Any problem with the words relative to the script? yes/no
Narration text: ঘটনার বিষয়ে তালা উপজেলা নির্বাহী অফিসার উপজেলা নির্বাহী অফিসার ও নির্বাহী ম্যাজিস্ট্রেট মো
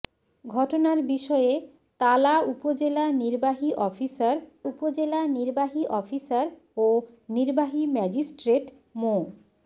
no